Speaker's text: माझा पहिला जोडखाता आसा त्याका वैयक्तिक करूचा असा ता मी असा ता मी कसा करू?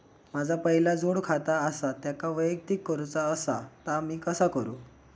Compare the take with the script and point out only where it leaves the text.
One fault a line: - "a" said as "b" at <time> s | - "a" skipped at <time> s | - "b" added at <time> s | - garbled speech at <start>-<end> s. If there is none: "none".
- "असा ता मी" skipped at 4.2 s